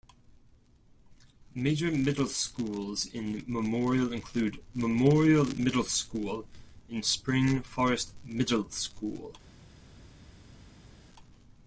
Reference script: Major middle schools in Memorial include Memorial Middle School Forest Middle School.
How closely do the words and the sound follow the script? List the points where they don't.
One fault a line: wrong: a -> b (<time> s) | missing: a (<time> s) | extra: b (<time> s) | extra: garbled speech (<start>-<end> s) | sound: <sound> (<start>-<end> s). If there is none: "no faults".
extra: and Spring (6.9 s)